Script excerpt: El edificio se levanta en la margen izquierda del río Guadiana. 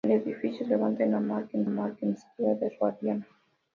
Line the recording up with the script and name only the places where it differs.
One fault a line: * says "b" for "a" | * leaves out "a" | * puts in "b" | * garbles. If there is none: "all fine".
* leaves out "se"
* puts in "margen"
* leaves out "río"